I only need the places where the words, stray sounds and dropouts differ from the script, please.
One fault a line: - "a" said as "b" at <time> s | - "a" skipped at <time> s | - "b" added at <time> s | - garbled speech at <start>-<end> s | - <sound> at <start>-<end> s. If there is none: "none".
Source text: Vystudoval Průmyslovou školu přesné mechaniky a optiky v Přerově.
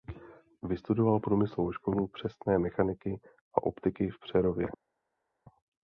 none